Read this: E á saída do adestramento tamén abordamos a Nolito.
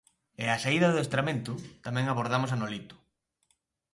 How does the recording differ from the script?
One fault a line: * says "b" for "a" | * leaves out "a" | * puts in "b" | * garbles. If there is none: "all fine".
all fine